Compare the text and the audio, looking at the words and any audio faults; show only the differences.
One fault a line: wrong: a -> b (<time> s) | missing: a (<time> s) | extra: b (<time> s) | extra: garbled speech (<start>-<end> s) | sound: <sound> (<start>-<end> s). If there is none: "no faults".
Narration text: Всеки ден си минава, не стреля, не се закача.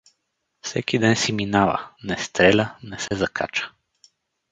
sound: dropout (3.1-3.1 s)